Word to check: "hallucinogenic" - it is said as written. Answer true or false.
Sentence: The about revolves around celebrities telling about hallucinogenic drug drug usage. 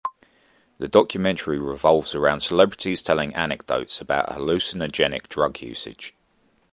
true